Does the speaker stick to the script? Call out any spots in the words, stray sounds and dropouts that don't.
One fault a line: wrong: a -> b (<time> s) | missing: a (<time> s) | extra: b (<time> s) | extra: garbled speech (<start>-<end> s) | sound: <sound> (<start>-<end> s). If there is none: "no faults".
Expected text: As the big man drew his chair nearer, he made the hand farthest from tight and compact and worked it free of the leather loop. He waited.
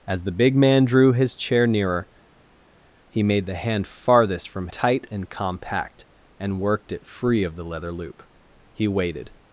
no faults